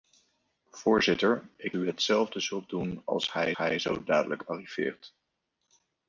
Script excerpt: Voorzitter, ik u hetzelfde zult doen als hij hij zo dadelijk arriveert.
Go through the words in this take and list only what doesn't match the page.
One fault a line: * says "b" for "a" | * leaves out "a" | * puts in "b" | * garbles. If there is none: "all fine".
all fine